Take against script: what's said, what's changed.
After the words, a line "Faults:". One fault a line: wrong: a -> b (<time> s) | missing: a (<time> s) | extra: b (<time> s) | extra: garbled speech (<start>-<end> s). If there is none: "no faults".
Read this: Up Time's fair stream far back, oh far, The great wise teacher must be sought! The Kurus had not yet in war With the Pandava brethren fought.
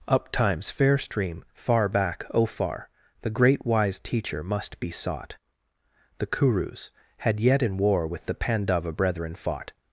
Up Time's fair stream far back, oh far, The great wise teacher must be sought! The Kurus had yet in war With the Pandava brethren fought.
Faults:
missing: not (7.4 s)